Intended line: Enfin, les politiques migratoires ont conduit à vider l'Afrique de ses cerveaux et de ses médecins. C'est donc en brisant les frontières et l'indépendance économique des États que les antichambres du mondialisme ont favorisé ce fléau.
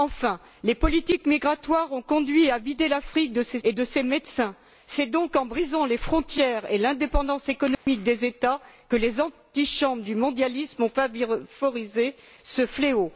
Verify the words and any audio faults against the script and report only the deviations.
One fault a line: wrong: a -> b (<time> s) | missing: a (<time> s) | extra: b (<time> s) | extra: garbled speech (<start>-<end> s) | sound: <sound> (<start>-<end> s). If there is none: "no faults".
missing: cerveaux (3.6 s)
sound: dropout (7.7-7.9 s)